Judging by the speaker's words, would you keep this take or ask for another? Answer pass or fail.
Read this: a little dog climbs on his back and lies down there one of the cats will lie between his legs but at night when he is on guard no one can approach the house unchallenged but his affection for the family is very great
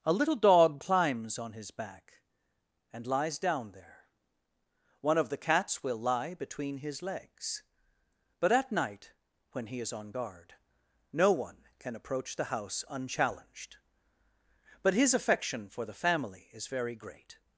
pass